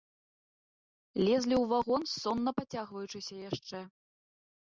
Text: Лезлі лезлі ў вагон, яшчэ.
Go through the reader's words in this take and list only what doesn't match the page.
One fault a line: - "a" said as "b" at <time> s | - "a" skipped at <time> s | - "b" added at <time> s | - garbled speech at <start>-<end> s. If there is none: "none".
- "лезлі" skipped at 1.6 s
- "сонна пацягваючыся" added at 2.2 s